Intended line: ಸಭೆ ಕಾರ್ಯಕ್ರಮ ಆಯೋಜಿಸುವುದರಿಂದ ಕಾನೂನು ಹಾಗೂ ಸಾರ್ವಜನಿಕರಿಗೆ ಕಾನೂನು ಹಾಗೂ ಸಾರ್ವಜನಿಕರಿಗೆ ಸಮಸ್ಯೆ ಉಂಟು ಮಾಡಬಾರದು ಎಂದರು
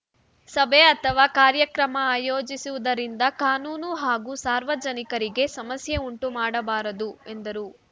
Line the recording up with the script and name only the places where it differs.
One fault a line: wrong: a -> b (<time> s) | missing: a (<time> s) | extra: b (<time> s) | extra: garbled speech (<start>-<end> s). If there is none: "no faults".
extra: ಅಥವಾ (0.8 s)
missing: ಕಾನೂನು ಹಾಗೂ ಸಾರ್ವಜನಿಕರಿಗೆ (5.5 s)